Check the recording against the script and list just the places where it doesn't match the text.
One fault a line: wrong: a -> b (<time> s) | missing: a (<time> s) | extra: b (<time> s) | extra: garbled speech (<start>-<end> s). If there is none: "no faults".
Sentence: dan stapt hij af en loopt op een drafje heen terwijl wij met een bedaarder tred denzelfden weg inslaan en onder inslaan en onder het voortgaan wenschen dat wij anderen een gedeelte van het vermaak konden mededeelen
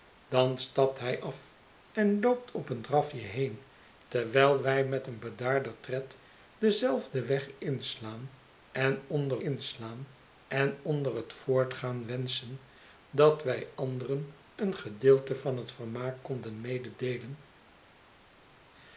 no faults